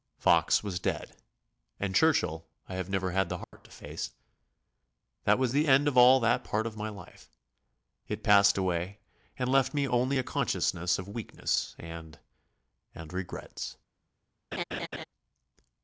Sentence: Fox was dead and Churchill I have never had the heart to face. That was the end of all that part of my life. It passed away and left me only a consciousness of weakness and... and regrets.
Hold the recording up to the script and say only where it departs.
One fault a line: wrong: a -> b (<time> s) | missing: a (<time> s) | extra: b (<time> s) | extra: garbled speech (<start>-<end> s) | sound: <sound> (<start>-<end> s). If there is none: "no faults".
sound: dropout (3.4-3.5 s)
sound: laugh (14.5-15.0 s)